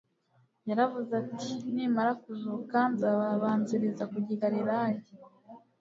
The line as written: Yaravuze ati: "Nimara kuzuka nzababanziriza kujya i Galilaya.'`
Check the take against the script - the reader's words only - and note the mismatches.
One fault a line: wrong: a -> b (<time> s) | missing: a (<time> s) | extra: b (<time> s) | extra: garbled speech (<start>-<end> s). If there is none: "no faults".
no faults